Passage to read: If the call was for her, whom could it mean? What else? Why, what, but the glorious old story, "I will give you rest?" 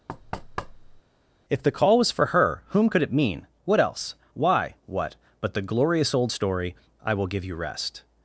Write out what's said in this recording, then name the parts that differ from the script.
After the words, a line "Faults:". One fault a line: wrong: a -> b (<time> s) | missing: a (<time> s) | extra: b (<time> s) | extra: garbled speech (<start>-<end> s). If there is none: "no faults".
If the call was for her, whom could it mean? What else? Why, what, but the glorious old story, "I will give you rest?"
Faults:
no faults